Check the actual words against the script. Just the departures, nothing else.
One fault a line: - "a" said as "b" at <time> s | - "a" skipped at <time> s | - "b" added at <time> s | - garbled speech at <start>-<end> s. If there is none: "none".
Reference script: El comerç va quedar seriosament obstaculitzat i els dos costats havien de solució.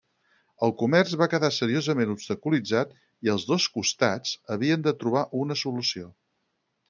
- "trobar una" added at 5.0 s